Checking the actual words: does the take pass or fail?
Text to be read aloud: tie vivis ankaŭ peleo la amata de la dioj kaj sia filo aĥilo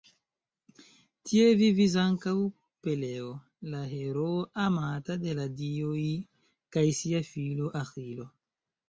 fail